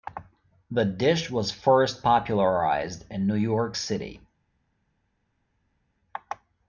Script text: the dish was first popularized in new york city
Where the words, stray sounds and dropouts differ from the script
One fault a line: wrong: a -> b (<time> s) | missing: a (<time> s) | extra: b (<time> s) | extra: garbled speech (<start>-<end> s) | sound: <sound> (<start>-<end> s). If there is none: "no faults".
no faults